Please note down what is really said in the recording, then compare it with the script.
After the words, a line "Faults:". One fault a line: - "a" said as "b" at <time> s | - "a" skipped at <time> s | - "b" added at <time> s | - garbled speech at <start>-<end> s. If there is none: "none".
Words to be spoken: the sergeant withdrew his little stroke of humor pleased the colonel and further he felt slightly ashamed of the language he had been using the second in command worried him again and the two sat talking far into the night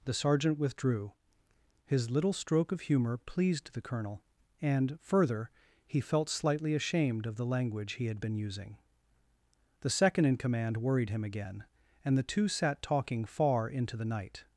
the sergeant withdrew his little stroke of humor pleased the colonel and further he felt slightly ashamed of the language he had been using the second in command worried him again and the two sat talking far into the night
Faults:
none